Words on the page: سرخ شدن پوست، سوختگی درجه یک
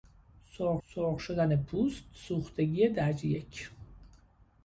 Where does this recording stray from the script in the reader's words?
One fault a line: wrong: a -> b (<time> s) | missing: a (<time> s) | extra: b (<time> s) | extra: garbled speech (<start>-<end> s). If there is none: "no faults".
extra: سرخ (0.9 s)